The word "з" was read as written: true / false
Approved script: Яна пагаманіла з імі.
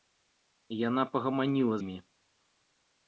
false